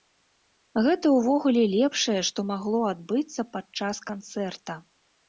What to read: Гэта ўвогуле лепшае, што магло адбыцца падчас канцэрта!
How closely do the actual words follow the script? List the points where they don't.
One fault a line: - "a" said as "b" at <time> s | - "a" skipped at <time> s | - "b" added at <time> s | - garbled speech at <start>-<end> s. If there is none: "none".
none